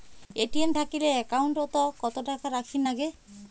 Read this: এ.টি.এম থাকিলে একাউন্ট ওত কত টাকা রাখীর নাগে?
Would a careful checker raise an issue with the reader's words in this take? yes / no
no